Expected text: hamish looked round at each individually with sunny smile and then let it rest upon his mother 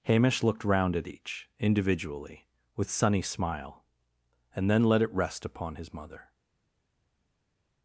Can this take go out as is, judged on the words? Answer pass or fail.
pass